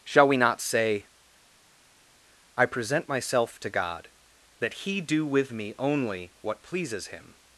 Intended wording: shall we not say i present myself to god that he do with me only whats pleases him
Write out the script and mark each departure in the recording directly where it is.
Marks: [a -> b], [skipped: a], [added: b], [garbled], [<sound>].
shall we not say i present myself to god that he do with me only [whats -> what] pleases him